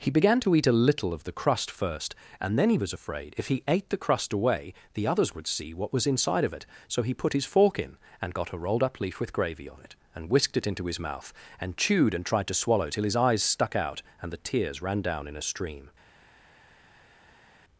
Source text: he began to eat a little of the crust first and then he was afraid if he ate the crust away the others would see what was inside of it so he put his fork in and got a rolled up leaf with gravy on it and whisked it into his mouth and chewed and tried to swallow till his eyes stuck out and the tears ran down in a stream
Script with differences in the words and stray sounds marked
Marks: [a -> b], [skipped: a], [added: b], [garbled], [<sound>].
he began to eat a little of the crust first and then he was afraid if he ate the crust away the others would see what was inside of it so he put his fork in and got a rolled up leaf with gravy on it and whisked it into his mouth and chewed and tried to swallow till his eyes stuck out and the tears ran down in a stream